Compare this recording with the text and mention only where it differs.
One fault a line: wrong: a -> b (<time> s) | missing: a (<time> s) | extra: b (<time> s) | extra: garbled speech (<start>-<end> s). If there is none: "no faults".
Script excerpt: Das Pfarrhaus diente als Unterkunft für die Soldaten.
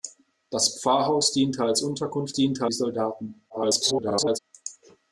wrong: für -> diente (2.3 s)
extra: garbled speech (3.5-4.4 s)